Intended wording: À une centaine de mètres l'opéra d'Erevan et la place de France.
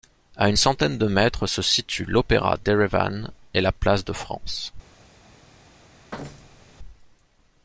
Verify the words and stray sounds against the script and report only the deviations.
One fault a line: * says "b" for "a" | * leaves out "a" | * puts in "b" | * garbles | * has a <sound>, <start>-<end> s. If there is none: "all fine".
* puts in "se situent"
* has a thud, 6.1-6.8 s